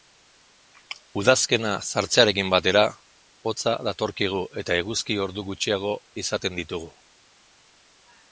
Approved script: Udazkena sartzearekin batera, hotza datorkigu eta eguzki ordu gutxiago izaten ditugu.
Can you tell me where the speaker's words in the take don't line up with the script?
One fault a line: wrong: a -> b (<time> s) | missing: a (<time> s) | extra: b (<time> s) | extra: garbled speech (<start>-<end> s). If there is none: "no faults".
no faults